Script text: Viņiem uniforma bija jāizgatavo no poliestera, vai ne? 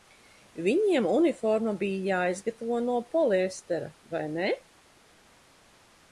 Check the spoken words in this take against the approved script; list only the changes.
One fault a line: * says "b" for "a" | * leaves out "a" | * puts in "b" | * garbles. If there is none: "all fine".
all fine